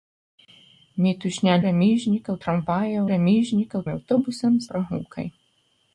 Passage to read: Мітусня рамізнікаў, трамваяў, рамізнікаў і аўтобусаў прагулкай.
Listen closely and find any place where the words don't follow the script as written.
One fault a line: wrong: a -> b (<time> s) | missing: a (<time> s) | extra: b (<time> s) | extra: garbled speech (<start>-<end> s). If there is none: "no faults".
no faults